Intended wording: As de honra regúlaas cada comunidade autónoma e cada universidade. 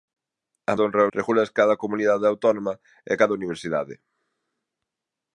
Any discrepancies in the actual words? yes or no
no